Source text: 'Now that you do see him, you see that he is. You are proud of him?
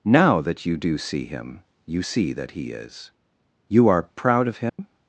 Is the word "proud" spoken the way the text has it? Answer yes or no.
yes